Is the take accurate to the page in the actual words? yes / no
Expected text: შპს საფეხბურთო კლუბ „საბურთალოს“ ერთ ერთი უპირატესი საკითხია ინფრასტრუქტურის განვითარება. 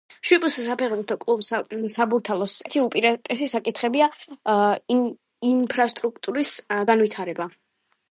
no